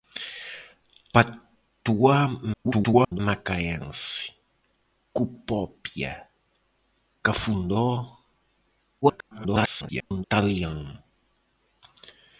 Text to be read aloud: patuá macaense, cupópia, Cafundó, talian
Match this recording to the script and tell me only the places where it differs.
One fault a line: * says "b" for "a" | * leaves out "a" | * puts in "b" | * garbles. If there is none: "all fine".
* garbles
* garbles